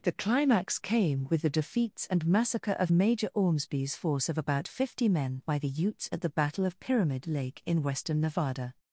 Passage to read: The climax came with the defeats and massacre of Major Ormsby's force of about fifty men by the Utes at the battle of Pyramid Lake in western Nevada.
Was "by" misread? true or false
false